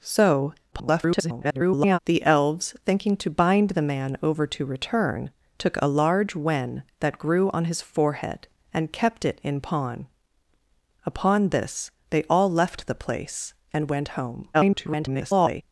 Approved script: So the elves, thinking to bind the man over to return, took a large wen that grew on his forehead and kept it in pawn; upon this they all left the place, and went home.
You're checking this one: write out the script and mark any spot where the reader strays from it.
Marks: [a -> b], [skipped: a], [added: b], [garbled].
So [garbled] the elves, thinking to bind the man over to return, took a large wen that grew on his forehead and kept it in pawn; upon this they all left the place, and went home. [garbled]